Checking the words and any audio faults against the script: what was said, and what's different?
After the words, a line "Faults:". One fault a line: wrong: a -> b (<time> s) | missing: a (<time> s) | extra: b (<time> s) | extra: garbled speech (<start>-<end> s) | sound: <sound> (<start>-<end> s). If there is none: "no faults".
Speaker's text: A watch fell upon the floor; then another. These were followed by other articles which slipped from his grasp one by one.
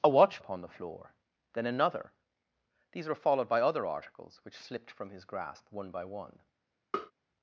A watch upon the floor; then another. These were followed by other articles which slipped from his grasp one by one.
Faults:
missing: fell (0.4 s)
sound: tap (6.9-7.1 s)